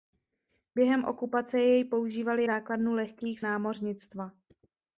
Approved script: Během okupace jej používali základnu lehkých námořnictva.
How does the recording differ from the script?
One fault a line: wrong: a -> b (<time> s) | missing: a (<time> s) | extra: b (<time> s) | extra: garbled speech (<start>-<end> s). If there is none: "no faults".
no faults